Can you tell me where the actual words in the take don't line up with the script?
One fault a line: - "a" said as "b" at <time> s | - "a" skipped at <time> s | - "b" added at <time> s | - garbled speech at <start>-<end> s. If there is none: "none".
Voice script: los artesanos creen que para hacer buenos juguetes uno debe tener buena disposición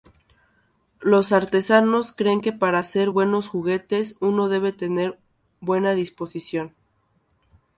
none